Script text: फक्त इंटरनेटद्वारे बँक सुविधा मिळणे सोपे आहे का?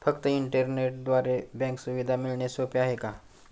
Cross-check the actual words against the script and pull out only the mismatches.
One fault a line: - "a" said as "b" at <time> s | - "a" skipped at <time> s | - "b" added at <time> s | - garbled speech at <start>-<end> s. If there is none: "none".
none